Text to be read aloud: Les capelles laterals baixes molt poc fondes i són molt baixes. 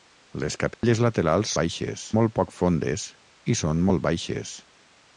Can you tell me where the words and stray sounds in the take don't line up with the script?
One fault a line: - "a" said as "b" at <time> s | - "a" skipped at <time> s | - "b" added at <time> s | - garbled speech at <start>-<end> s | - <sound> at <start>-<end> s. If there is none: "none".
- dropout at 0.7-0.8 s